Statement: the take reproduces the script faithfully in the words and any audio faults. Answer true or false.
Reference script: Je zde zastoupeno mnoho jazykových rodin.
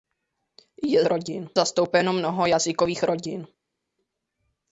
false